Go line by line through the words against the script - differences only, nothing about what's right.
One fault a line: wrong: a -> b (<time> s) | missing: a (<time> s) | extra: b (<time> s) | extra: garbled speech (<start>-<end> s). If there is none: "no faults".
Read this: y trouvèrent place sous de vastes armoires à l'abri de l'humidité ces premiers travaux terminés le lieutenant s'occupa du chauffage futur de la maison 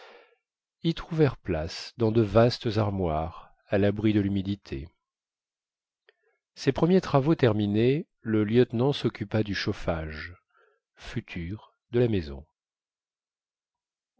wrong: sous -> dans (2.0 s)